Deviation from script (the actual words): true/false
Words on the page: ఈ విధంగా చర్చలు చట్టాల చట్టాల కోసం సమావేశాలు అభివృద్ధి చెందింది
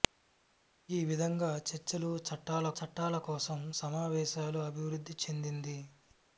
false